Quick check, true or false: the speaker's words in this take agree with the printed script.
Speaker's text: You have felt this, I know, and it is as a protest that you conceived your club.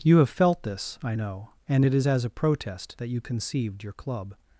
true